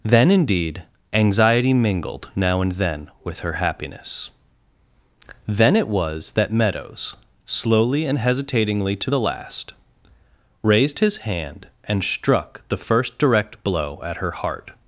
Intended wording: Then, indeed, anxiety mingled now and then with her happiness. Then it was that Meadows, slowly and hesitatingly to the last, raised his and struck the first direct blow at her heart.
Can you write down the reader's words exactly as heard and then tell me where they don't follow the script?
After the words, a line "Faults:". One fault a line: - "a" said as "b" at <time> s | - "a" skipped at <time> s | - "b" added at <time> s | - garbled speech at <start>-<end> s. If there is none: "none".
Then, indeed, anxiety mingled now and then with her happiness. Then it was that Meadows, slowly and hesitatingly to the last, raised his hand and struck the first direct blow at her heart.
Faults:
- "hand" added at 11.2 s